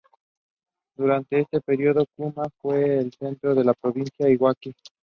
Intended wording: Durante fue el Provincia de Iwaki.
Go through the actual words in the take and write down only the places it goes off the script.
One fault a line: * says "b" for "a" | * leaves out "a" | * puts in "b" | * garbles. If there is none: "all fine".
* puts in "este período Kuma"
* puts in "centro de la"